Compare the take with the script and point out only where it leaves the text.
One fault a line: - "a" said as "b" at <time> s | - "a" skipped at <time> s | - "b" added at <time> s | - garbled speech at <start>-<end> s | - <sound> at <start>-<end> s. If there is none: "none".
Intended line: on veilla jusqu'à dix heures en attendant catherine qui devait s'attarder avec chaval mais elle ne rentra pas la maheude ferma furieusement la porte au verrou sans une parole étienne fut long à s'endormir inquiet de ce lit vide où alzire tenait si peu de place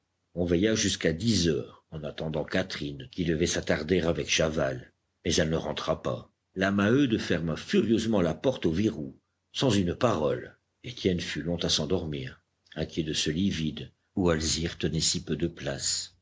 none